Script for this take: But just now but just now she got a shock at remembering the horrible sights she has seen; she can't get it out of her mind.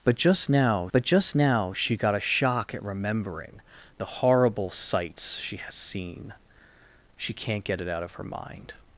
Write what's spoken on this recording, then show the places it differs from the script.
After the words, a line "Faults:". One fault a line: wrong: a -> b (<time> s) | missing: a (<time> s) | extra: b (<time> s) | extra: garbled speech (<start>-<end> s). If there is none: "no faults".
But just now but just now she got a shock at remembering the horrible sights she has seen; she can't get it out of her mind.
Faults:
no faults